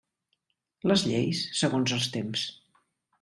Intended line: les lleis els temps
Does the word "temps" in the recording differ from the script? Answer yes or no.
no